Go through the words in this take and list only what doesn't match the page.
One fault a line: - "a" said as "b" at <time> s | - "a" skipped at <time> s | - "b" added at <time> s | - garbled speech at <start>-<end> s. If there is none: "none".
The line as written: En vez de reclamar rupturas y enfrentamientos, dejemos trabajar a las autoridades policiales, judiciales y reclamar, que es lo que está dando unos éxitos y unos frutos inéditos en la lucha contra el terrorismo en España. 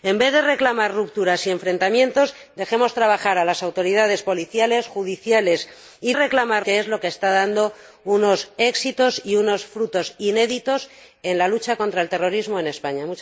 none